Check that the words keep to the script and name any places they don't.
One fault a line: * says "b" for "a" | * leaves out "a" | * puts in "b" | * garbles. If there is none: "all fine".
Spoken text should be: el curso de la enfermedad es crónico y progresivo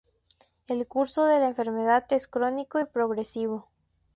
all fine